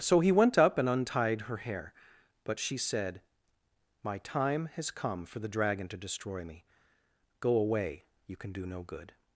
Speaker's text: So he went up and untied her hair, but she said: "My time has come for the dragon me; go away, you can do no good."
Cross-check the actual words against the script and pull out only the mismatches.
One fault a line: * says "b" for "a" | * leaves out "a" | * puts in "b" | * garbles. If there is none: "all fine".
* puts in "to destroy"